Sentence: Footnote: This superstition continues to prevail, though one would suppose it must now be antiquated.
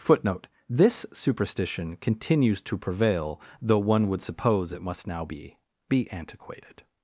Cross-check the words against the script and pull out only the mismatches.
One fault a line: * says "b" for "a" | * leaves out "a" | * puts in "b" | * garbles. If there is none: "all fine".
* puts in "be"